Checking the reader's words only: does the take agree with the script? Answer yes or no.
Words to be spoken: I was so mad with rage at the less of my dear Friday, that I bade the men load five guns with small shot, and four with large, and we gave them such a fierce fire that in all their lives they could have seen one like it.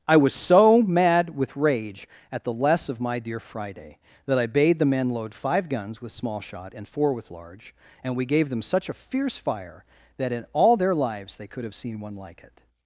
yes